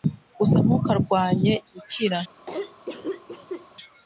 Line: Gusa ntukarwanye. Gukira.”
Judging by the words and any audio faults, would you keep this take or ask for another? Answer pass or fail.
fail